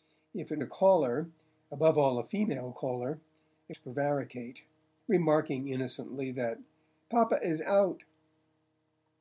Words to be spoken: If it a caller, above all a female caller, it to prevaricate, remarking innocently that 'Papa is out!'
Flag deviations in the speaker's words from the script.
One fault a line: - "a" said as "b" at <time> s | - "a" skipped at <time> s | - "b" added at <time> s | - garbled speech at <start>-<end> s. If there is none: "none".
none